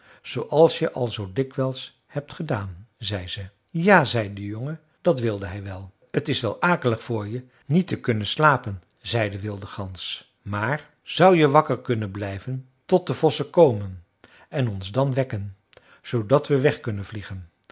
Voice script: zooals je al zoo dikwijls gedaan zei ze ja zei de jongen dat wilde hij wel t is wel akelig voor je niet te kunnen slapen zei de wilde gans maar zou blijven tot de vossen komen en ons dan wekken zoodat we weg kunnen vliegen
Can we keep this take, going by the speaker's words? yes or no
no